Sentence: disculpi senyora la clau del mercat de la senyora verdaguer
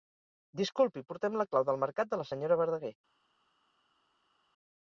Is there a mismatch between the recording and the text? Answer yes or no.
yes